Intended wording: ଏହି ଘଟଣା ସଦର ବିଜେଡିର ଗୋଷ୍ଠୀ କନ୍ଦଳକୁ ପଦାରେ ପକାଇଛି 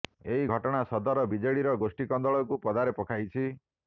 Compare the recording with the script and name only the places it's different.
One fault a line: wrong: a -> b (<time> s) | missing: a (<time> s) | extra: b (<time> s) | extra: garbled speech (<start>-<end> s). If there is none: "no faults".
no faults